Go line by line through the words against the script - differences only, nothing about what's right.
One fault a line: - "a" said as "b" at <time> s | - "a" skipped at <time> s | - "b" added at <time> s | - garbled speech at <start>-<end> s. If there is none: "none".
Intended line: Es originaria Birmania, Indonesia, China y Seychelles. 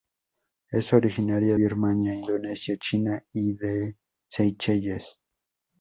none